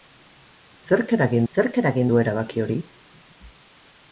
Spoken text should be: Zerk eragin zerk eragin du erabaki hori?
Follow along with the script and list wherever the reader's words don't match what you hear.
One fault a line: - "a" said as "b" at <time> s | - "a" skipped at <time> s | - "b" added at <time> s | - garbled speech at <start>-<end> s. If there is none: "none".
none